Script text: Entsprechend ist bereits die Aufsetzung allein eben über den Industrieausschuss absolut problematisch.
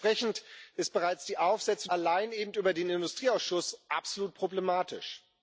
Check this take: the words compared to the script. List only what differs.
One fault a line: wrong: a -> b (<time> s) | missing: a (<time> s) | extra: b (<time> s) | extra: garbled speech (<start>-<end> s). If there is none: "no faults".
no faults